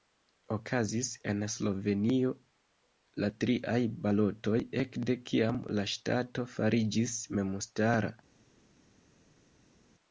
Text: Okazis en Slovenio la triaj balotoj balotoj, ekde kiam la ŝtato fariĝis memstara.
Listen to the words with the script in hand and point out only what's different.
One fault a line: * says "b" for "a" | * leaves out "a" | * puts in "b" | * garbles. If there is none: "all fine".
* leaves out "balotoj"